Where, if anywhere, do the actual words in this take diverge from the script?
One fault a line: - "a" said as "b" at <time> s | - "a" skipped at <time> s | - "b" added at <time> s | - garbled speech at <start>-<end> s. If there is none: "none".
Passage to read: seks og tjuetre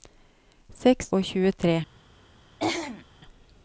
none